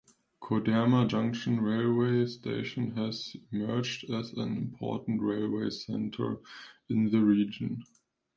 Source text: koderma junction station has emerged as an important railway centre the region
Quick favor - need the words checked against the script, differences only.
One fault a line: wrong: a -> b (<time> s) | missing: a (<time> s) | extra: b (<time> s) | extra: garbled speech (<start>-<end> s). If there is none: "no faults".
extra: railway (1.6 s)
extra: in (6.9 s)